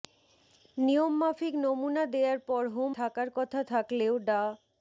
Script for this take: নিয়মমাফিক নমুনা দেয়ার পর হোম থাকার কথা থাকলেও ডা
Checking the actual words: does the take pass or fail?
pass